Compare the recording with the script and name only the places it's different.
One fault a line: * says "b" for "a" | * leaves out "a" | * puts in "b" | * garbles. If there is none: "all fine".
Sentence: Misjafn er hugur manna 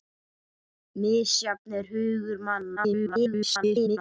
* garbles